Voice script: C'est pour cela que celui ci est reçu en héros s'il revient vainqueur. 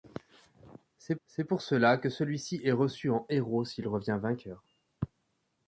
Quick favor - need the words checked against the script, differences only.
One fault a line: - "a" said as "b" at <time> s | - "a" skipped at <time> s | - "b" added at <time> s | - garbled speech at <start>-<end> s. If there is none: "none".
- "c'est" added at 1.3 s